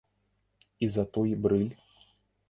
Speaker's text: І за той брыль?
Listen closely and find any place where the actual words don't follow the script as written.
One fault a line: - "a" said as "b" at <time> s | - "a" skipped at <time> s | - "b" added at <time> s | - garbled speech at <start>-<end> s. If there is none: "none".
none